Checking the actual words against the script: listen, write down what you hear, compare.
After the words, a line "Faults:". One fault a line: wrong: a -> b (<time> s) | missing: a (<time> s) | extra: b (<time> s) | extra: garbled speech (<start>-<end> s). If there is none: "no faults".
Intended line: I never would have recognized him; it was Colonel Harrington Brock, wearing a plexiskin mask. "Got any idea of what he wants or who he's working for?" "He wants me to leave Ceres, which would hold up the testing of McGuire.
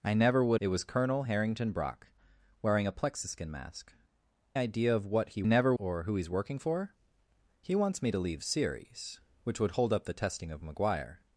I never would; it was Colonel Harrington Brock, wearing a plexiskin mask. "Idea of what he never or who he's working for?" "He wants me to leave Ceres, which would hold up the testing of McGuire.
Faults:
missing: have recognized him (0.6 s)
missing: Got any (3.9 s)
wrong: wants -> never (5.4 s)